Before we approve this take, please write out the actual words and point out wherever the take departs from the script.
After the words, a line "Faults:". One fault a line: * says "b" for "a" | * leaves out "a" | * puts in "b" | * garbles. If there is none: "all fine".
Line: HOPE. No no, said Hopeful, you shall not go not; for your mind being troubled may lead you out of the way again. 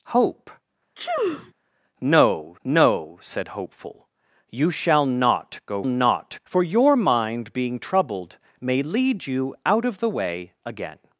HOPE. No no, said Hopeful, you shall not go not; for your mind being troubled may lead you out of the way again.
Faults:
all fine